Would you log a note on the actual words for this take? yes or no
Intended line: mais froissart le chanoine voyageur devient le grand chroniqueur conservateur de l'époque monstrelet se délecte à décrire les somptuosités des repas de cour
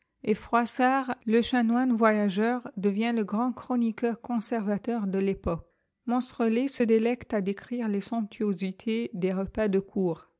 yes